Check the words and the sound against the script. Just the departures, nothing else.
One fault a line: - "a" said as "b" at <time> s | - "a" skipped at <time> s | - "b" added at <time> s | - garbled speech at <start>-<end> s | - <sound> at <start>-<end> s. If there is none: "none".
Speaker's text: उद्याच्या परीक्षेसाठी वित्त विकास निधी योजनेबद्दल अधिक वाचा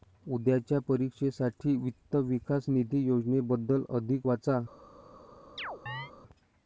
- chirp at 5.6-6.1 s